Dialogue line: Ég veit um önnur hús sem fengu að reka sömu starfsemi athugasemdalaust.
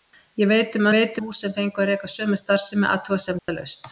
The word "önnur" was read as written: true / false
false